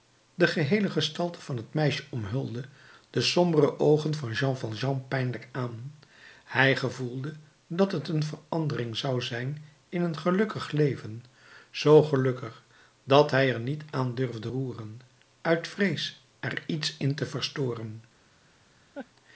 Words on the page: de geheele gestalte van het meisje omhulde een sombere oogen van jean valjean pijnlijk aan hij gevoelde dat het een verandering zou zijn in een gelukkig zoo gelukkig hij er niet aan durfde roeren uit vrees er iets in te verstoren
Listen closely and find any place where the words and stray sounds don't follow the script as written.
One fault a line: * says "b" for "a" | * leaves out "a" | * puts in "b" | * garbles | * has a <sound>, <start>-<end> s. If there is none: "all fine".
* says "de" for "een"
* puts in "leven"
* puts in "dat"
* has a laugh, 18.9-19.1 s